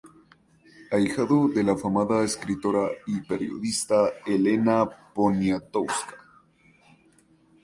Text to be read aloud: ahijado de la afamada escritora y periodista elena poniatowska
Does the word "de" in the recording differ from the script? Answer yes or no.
no